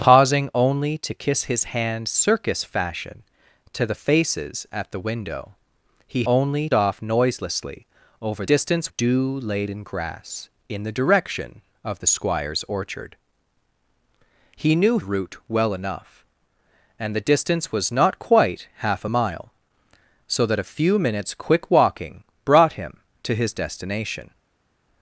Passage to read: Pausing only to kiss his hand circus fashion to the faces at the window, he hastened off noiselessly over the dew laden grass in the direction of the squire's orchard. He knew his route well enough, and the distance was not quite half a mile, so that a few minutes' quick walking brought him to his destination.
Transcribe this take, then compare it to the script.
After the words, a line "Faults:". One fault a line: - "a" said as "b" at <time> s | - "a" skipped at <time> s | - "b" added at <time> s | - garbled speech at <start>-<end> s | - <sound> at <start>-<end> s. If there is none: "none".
Pausing only to kiss his hand circus fashion to the faces at the window, he only off noiselessly over distance dew laden grass in the direction of the squire's orchard. He knew route well enough, and the distance was not quite half a mile, so that a few minutes' quick walking brought him to his destination.
Faults:
- "hastened" said as "only" at 6.3 s
- "the" said as "distance" at 8.4 s
- "his" skipped at 15.0 s